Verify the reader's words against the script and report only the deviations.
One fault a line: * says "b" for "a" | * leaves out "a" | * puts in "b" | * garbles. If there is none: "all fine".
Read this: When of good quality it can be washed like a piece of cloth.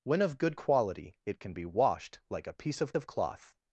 * puts in "of"